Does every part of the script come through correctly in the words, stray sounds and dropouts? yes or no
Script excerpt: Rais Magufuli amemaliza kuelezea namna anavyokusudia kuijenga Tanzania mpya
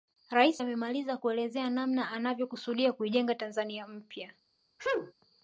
no